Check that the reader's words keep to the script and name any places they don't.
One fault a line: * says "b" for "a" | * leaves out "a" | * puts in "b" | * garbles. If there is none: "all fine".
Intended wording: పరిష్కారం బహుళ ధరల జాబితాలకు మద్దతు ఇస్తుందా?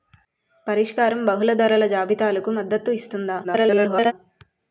* garbles